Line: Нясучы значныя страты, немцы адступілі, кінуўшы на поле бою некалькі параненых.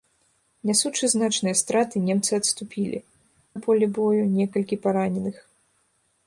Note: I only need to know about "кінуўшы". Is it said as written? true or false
false